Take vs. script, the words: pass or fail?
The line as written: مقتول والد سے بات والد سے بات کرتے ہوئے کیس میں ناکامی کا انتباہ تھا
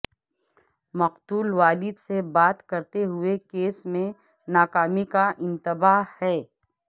fail